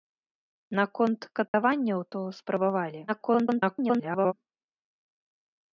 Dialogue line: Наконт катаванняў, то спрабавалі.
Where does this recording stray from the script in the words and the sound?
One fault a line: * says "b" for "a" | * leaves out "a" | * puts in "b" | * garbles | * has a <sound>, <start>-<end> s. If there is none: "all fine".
* has a dropout, 1.5-1.5 s
* garbles